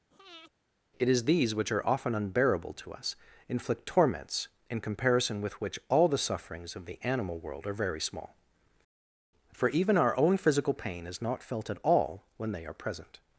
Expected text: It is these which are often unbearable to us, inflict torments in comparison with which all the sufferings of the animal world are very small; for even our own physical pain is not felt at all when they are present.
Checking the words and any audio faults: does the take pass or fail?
fail